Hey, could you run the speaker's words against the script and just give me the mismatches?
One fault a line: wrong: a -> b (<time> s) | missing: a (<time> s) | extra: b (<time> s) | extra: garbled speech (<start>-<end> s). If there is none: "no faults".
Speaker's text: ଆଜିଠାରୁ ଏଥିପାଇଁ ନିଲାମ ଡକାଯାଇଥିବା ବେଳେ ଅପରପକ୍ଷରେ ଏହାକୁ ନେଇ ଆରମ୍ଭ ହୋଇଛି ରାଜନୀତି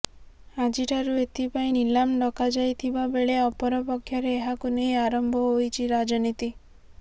no faults